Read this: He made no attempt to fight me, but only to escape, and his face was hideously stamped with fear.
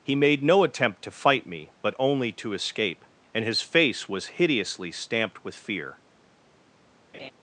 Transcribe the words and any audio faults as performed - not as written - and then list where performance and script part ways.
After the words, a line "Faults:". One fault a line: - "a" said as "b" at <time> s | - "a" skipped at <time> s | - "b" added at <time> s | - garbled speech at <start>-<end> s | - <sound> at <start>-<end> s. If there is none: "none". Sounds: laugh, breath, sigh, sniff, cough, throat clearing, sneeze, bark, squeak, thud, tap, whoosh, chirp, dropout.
He made no attempt to fight me, but only to escape, and his face was hideously stamped with fear.
Faults:
- laugh at 7.1-7.3 s